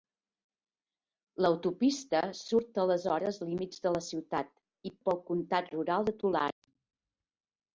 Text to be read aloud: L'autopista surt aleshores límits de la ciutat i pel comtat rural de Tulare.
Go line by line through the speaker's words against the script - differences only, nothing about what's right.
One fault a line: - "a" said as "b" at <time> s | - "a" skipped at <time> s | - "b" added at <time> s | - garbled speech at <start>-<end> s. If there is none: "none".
none